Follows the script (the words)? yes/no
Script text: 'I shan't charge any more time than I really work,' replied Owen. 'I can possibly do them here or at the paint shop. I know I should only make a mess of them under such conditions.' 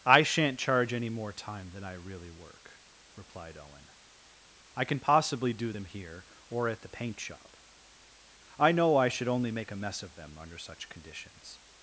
yes